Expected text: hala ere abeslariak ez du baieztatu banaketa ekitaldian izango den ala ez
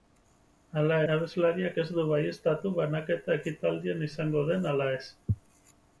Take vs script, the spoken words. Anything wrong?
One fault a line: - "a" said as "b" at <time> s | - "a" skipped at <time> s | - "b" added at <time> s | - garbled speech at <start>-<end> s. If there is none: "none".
- "ere" skipped at 0.9 s